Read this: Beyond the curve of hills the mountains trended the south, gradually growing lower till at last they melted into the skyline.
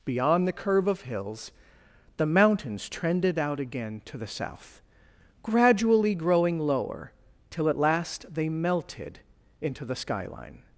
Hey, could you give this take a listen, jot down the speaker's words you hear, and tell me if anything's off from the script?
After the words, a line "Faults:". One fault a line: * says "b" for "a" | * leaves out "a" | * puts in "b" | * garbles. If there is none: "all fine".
Beyond the curve of hills the mountains trended out again to the south, gradually growing lower till at last they melted into the skyline.
Faults:
* puts in "out again to"